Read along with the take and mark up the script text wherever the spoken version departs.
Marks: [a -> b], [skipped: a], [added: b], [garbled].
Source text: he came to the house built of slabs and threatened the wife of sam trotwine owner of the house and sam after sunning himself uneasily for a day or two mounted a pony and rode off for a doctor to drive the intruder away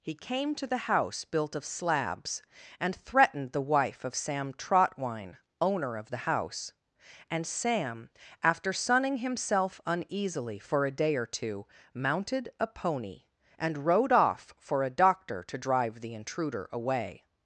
he came to the house built of slabs and threatened the wife of sam trotwine owner of the house and sam after sunning himself uneasily for a day or two mounted a pony and rode off for a doctor to drive the intruder away